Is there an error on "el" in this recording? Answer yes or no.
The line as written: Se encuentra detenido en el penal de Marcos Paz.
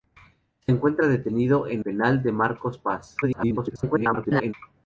yes